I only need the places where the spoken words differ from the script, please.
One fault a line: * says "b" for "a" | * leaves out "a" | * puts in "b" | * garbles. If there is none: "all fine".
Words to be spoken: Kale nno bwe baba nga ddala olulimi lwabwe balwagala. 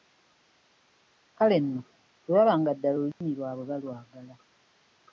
all fine